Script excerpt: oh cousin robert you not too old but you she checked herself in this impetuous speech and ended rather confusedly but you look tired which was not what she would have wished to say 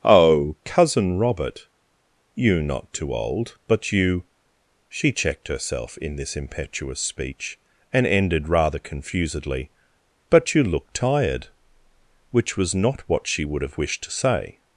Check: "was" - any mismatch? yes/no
no